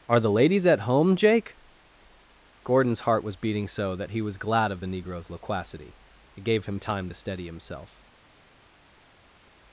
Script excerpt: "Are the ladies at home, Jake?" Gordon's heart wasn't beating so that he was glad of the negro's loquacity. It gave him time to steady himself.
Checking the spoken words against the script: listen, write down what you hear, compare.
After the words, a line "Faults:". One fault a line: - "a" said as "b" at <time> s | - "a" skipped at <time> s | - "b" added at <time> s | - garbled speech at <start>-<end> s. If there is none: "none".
"Are the ladies at home, Jake?" Gordon's heart was beating so that he was glad of the negro's loquacity. It gave him time to steady himself.
Faults:
- "wasn't" said as "was" at 3.2 s